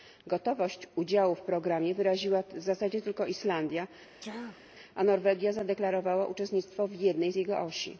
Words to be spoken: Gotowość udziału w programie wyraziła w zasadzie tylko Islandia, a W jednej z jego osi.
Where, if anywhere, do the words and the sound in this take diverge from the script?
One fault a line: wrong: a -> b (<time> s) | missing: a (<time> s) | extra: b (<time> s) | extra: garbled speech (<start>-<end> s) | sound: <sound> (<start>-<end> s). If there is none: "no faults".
sound: sneeze (4.2-4.6 s)
extra: Norwegia zadeklarowała uczestnictwo (5.0 s)